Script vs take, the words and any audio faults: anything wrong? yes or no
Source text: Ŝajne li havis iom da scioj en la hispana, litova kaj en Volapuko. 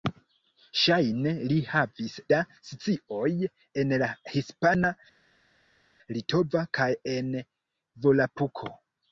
yes